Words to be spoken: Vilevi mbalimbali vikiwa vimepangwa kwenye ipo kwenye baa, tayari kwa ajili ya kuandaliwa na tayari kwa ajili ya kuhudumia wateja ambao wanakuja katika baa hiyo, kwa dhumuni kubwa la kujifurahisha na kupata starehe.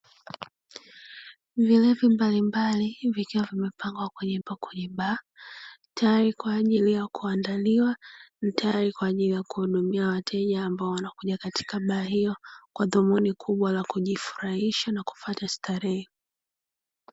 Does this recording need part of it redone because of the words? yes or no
no